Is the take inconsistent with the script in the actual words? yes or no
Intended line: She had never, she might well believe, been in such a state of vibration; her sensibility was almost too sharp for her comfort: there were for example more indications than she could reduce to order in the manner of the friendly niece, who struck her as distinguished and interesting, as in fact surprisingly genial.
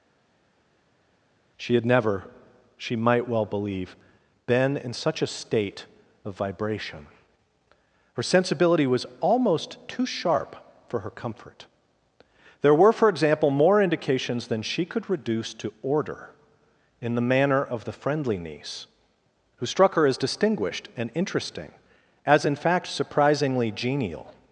no